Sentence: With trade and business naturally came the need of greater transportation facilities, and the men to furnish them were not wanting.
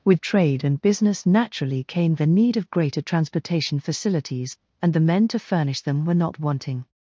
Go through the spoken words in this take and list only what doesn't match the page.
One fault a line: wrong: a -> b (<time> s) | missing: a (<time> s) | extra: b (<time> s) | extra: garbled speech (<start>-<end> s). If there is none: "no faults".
no faults